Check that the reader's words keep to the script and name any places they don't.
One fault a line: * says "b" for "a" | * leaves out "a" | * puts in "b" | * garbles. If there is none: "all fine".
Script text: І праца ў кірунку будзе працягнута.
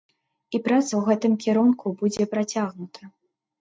* puts in "гэтым"